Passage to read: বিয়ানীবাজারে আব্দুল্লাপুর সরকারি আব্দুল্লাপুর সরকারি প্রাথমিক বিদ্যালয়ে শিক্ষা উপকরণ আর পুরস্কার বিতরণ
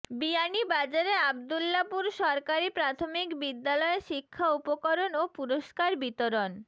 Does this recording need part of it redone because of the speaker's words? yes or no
yes